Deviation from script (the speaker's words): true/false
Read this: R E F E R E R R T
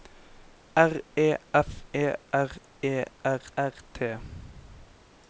false